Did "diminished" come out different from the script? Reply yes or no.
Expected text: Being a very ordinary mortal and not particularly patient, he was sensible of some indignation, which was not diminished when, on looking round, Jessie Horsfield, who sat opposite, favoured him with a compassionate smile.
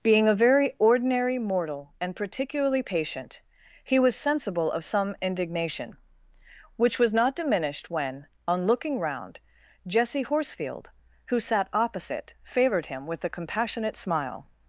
no